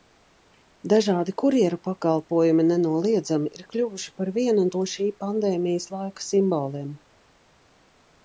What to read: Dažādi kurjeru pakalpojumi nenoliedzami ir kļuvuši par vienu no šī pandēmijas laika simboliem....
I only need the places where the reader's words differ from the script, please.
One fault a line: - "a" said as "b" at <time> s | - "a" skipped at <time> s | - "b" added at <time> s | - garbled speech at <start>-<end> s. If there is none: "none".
none